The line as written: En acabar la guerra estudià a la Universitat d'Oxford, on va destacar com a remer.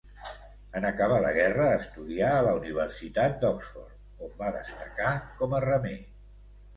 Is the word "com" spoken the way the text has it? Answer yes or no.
yes